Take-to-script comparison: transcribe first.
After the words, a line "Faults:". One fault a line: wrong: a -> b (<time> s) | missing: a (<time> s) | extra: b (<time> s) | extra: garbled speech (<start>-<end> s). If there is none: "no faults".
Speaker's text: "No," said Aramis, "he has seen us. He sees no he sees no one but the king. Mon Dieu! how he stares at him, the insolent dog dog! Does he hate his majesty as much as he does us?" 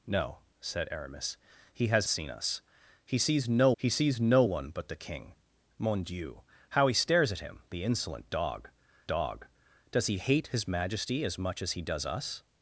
"No," said Aramis, "he has seen us. He sees no he sees no one but the king. Mon Dieu! how he stares at him, the insolent dog dog! Does he hate his majesty as much as he does us?"
Faults:
no faults